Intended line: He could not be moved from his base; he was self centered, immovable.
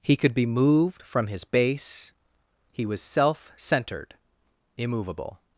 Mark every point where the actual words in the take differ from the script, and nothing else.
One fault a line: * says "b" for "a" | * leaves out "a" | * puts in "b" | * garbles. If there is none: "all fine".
* leaves out "not"